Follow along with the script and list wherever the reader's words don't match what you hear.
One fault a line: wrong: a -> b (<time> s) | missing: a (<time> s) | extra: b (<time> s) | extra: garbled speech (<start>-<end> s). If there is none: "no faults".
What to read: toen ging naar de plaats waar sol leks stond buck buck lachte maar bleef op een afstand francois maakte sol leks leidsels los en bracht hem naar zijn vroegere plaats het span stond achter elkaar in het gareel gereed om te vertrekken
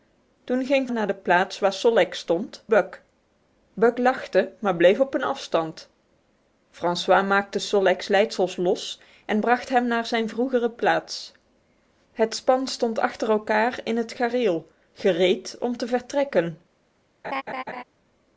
no faults